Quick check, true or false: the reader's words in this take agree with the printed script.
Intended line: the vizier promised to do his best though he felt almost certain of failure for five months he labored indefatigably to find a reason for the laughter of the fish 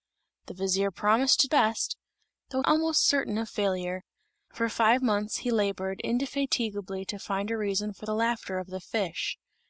false